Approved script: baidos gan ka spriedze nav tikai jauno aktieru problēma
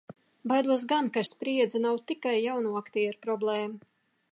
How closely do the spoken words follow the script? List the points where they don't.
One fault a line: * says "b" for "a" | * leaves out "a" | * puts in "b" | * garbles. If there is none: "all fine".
all fine